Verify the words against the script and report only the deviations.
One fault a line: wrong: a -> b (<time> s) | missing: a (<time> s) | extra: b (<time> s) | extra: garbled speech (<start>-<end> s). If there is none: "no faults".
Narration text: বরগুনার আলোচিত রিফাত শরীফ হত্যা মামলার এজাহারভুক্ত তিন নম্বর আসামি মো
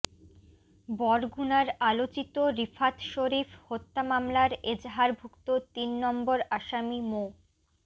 no faults